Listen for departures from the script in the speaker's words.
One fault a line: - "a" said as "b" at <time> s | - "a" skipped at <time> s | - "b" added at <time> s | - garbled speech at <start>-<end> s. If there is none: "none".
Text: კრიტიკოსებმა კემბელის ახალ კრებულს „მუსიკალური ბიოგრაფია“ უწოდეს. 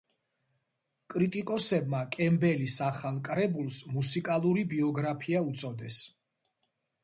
none